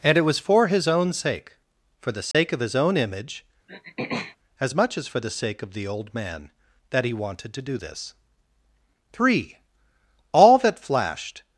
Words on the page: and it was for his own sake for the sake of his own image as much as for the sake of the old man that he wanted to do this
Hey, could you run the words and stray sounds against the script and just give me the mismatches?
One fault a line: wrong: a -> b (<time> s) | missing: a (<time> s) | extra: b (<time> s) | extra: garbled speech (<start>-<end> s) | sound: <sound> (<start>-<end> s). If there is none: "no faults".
sound: dropout (2.3-2.3 s)
sound: throat clearing (3.7-4.4 s)
extra: three all that flashed (9.1 s)